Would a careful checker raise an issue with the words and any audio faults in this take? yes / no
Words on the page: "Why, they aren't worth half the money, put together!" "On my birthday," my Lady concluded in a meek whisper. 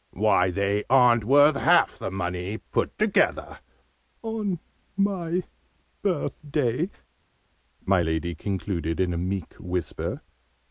no